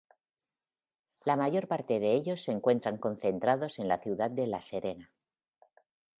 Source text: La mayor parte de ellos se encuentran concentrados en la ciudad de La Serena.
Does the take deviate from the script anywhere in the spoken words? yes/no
no